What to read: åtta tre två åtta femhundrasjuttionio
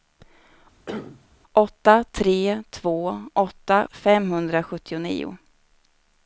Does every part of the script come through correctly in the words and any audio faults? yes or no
no